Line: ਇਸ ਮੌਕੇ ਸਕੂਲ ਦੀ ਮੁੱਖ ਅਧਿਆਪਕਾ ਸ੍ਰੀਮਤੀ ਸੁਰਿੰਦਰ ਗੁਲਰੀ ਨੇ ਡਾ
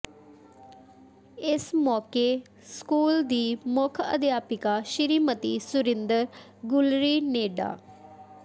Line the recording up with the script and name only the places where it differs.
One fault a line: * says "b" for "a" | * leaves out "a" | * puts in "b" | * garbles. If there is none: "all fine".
all fine